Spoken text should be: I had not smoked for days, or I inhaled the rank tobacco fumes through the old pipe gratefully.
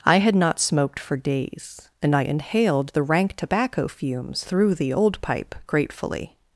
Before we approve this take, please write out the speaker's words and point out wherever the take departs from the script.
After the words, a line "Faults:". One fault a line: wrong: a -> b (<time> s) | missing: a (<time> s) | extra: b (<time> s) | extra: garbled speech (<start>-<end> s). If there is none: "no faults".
I had not smoked for days, and I inhaled the rank tobacco fumes through the old pipe gratefully.
Faults:
wrong: or -> and (2.0 s)